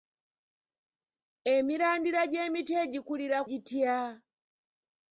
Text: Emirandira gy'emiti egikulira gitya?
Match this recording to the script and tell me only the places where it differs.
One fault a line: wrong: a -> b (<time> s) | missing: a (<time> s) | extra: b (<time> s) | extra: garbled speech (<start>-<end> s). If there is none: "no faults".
no faults